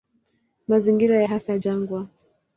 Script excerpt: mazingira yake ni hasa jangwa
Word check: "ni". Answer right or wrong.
wrong